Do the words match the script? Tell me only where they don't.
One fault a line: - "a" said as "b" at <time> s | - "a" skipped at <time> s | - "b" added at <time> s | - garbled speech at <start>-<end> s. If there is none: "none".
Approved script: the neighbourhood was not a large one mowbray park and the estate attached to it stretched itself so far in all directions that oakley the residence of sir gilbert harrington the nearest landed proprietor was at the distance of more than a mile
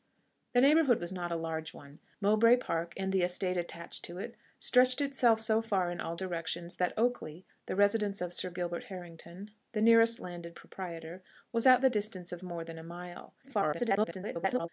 - garbled speech at 13.4-14.7 s